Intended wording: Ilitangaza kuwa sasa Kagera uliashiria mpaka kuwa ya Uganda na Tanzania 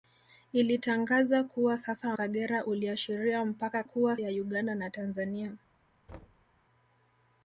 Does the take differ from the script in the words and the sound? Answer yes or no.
yes